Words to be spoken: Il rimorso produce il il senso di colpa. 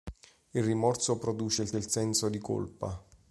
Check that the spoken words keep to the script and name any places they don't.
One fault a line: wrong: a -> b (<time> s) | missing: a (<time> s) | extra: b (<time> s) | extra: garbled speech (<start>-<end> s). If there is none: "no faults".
no faults